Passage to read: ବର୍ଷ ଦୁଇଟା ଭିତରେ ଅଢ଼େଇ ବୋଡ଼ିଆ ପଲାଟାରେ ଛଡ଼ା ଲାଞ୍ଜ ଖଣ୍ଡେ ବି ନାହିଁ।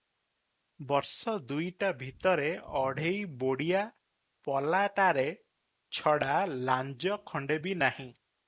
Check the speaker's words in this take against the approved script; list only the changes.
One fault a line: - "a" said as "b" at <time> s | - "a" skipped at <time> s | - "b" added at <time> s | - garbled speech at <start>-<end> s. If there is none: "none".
none